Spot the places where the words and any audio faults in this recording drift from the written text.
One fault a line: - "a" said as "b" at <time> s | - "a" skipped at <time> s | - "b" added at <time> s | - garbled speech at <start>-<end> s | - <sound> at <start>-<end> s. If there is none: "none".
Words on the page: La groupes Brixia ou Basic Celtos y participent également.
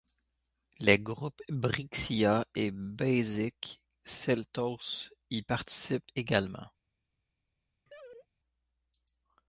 - "La" said as "Les" at 0.8 s
- "ou" said as "et" at 2.5 s
- laugh at 7.9-8.3 s